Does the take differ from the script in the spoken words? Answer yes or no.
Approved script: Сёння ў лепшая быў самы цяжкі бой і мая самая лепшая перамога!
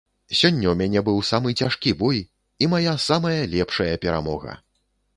yes